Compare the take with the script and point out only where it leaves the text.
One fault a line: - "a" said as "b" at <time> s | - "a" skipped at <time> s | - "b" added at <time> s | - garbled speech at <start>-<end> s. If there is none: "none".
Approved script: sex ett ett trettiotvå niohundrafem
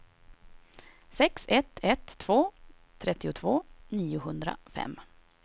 - "två" added at 2.2 s